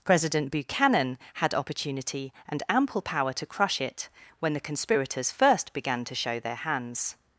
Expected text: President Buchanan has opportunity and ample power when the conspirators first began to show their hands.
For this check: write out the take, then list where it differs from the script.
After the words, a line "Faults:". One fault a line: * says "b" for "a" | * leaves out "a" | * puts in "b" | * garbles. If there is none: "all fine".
President Buchanan had opportunity and ample power to crush it when the conspirators first began to show their hands.
Faults:
* says "had" for "has"
* puts in "to crush it"